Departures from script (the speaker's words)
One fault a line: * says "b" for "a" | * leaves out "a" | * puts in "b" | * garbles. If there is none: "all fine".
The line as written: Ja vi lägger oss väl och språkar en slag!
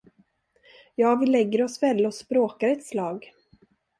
* says "ett" for "en"